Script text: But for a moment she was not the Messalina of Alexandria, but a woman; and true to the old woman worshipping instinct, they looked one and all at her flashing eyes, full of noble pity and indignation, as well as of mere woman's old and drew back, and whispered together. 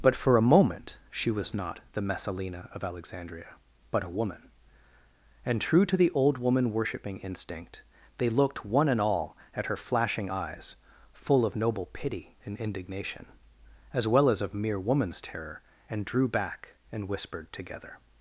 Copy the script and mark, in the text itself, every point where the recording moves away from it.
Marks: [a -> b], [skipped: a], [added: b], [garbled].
But for a moment she was not the Messalina of Alexandria, but a woman; and true to the old woman worshipping instinct, they looked one and all at her flashing eyes, full of noble pity and indignation, as well as of mere woman's [old -> terror] and drew back, and whispered together.